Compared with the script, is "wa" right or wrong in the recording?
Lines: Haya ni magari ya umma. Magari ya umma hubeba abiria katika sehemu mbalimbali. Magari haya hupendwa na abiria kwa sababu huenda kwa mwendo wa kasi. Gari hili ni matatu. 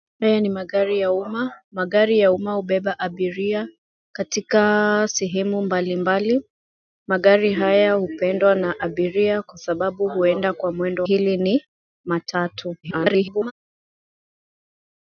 wrong